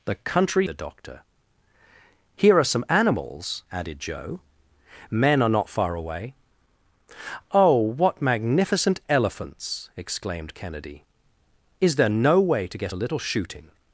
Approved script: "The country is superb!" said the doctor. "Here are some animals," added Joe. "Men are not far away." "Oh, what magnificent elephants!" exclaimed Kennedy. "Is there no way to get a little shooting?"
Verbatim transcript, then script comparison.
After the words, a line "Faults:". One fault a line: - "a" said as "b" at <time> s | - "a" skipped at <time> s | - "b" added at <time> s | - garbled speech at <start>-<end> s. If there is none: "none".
"The country the doctor. "Here are some animals," added Joe. "Men are not far away." "Oh, what magnificent elephants!" exclaimed Kennedy. "Is there no way to get a little shooting?"
Faults:
- "is superb said" skipped at 0.7 s